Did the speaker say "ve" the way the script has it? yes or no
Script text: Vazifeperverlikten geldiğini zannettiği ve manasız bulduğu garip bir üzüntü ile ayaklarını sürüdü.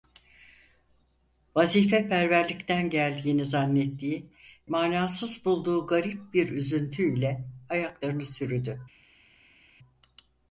no